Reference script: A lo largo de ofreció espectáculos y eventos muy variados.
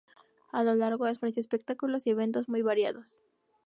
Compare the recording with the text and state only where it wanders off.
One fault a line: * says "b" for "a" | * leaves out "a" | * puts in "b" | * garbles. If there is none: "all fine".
all fine